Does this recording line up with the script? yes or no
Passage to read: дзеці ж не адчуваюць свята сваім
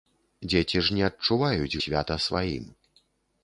yes